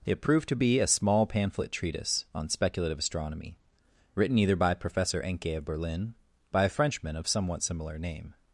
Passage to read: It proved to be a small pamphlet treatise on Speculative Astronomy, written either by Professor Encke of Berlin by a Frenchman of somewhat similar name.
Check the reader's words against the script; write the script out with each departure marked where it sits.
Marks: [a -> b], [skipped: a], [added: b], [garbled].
It proved to be a small pamphlet treatise on Speculative Astronomy, written either by Professor Encke of Berlin by a Frenchman of somewhat similar name.